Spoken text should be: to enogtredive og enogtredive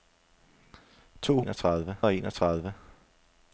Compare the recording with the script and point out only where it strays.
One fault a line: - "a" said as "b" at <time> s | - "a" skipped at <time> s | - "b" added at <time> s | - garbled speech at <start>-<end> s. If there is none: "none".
none